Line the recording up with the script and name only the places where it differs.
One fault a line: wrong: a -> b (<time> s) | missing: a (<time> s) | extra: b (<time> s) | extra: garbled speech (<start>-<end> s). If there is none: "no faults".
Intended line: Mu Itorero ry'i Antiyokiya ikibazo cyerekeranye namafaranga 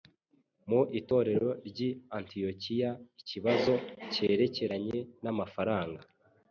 no faults